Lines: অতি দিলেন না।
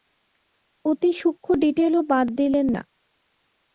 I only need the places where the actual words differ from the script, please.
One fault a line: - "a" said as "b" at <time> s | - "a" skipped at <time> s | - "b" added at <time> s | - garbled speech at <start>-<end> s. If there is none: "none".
- "সূক্ষ্ম ডিটেলও বাদ" added at 1.1 s